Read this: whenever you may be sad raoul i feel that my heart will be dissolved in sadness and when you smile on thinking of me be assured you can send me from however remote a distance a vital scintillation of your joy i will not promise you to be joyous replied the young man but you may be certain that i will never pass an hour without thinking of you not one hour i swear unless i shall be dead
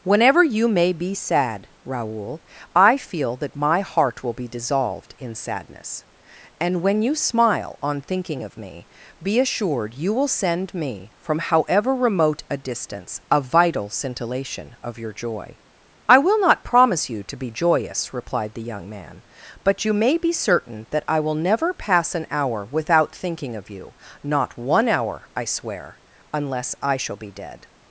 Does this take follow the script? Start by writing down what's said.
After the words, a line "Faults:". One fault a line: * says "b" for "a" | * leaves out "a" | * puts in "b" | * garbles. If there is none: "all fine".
whenever you may be sad raoul i feel that my heart will be dissolved in sadness and when you smile on thinking of me be assured you will send me from however remote a distance a vital scintillation of your joy i will not promise you to be joyous replied the young man but you may be certain that i will never pass an hour without thinking of you not one hour i swear unless i shall be dead
Faults:
* says "will" for "can"